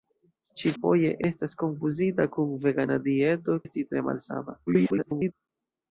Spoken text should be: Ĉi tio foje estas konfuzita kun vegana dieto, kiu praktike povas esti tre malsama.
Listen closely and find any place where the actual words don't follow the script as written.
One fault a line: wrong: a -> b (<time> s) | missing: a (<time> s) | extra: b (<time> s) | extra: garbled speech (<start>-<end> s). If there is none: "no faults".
missing: tio (0.7 s)
missing: kiu praktike povas (3.6 s)
extra: garbled speech (4.7-5.3 s)